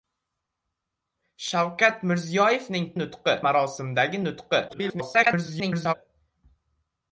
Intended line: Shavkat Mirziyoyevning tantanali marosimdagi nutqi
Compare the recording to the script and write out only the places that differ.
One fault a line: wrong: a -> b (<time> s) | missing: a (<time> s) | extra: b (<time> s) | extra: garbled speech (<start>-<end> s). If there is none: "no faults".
wrong: tantanali -> nutqi (3.0 s)
extra: garbled speech (4.7-5.9 s)